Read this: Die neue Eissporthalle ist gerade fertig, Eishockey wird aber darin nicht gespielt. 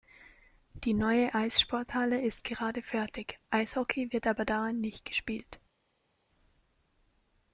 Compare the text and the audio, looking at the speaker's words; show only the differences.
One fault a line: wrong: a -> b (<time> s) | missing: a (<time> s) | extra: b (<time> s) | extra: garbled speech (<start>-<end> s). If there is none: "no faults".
no faults